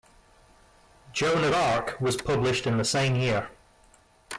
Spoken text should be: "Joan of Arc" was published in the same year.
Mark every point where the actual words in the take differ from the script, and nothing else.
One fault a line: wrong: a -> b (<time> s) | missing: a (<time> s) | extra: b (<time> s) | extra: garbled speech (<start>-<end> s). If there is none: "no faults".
no faults